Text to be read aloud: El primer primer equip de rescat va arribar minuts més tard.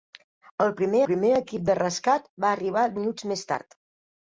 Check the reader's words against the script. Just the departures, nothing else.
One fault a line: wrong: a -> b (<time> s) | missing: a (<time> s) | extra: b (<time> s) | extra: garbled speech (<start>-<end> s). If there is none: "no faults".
no faults